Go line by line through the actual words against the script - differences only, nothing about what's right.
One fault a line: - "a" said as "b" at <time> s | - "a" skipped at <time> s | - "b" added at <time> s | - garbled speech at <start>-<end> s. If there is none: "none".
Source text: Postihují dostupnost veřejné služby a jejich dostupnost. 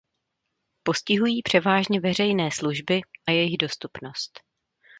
- "dostupnost" said as "převážně" at 1.4 s